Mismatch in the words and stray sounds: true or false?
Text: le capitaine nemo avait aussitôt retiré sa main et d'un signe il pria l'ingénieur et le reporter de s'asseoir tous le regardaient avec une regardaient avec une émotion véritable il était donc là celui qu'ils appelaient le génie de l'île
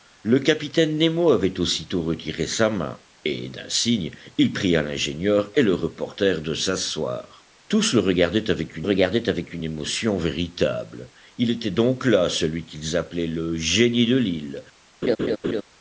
true